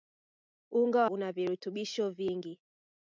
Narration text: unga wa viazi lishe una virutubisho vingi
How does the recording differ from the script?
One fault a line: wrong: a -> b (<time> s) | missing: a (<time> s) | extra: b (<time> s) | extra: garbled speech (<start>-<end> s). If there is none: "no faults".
missing: wa viazi lishe (1.1 s)